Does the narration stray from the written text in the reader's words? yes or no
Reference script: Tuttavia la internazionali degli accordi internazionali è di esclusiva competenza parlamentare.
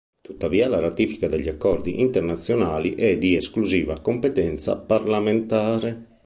yes